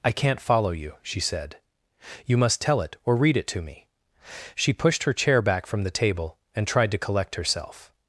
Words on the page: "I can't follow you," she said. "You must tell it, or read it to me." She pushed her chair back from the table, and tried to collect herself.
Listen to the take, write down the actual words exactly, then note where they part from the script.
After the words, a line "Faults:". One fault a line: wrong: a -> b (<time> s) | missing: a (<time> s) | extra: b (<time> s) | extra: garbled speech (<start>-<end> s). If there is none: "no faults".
"I can't follow you," she said. "You must tell it, or read it to me." She pushed her chair back from the table, and tried to collect herself.
Faults:
no faults